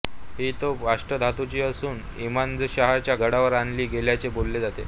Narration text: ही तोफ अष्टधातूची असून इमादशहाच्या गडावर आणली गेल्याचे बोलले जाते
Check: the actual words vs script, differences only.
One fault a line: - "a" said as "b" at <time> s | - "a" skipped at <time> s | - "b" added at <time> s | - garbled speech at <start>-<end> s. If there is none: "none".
none